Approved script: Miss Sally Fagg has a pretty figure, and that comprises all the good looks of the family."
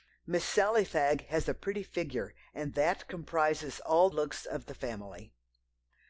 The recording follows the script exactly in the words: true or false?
false